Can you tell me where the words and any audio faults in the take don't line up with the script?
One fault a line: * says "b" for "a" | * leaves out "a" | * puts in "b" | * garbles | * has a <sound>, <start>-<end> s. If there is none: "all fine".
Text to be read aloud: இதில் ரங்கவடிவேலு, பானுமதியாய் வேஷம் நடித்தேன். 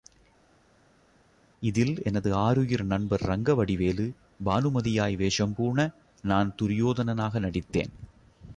* puts in "எனது ஆருயிர் நண்பர்"
* puts in "பூண நான் துரியோதனனாக"